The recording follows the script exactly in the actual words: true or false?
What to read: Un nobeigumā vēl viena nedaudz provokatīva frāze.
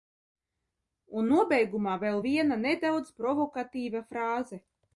true